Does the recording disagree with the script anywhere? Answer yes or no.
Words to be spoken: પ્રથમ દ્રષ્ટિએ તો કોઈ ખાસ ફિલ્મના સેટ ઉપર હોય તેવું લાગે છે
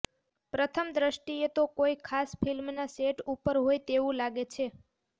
no